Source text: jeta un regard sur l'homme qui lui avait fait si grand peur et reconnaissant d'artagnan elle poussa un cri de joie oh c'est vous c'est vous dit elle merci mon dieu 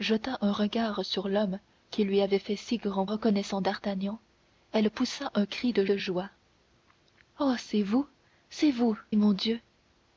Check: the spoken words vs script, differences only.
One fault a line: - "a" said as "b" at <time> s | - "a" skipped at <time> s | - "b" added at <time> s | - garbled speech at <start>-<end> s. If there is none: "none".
- "peur et" skipped at 3.0 s
- "de" added at 5.8 s
- "dit elle merci" skipped at 9.0 s